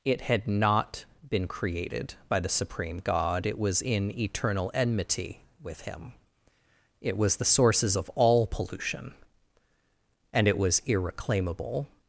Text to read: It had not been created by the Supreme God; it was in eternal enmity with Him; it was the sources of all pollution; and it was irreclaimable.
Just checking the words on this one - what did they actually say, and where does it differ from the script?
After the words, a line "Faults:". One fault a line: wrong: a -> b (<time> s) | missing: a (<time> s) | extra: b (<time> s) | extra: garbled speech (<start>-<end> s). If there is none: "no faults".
It had not been created by the Supreme God; it was in eternal enmity with Him; it was the sources of all pollution; and it was irreclaimable.
Faults:
no faults